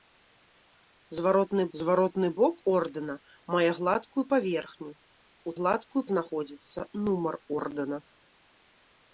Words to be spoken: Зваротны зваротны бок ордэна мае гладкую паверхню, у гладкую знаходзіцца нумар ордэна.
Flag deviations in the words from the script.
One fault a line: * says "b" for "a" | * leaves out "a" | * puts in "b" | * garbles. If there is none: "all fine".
all fine